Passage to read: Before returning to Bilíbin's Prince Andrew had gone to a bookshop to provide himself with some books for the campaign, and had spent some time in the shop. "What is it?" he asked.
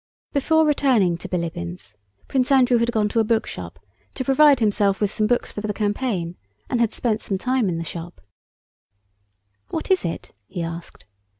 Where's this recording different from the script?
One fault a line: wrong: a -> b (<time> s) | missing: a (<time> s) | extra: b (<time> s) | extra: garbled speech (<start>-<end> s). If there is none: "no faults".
extra: for (5.6 s)